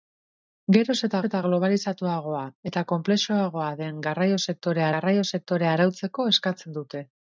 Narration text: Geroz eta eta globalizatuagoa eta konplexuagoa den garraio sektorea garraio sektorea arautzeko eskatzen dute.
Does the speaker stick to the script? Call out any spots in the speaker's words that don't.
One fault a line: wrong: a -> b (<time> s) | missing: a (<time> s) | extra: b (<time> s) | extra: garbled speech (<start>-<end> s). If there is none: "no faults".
no faults